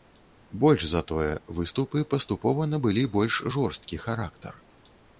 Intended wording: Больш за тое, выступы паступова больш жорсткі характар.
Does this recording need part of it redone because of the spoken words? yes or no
yes